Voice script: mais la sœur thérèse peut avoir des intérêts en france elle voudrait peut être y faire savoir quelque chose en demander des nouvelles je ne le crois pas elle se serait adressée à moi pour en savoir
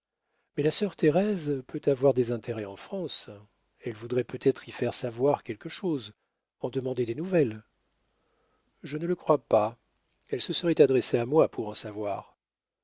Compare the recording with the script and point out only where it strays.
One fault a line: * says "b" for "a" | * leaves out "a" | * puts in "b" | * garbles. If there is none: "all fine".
all fine